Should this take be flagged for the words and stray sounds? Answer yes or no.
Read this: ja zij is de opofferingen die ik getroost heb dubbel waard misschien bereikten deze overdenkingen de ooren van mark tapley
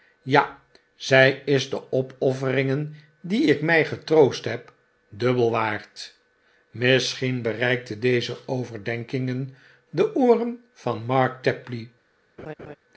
yes